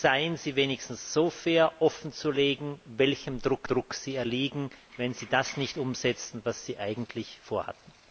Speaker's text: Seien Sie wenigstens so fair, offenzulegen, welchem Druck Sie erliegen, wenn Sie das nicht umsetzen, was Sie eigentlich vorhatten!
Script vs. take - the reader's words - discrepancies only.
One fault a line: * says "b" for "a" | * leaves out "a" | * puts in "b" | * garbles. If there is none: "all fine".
* puts in "Druck"